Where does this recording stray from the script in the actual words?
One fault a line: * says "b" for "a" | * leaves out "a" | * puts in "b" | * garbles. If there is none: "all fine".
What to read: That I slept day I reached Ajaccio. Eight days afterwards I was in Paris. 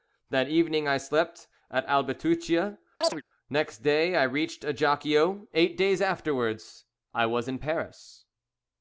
* puts in "evening"
* puts in "at Albitucia next"